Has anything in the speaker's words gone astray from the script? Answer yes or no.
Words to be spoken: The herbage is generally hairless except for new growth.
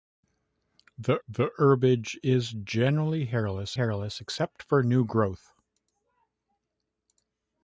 yes